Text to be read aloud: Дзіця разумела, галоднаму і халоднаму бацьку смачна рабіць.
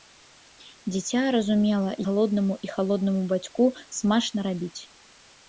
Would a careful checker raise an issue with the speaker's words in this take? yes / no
no